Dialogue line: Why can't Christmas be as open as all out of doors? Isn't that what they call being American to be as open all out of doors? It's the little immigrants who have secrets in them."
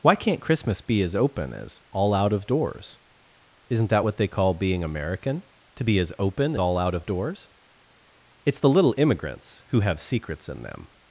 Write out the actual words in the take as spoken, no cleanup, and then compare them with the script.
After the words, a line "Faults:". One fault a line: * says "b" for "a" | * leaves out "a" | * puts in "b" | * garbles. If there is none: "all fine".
Why can't Christmas be as open as all out of doors? Isn't that what they call being American to be as open all out of doors? It's the little immigrants who have secrets in them."
Faults:
all fine